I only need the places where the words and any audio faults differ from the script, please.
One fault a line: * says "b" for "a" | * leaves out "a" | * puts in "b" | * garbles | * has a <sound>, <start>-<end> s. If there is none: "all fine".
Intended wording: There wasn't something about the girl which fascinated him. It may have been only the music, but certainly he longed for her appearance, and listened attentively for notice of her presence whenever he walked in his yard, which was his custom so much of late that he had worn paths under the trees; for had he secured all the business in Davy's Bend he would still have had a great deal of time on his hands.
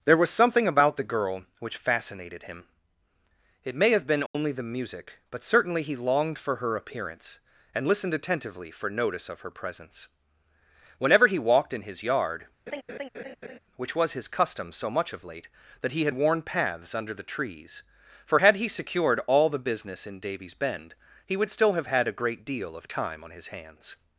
* says "was" for "wasn't"
* has a dropout, 4.3-4.3 s
* has a laugh, 12.7-13.6 s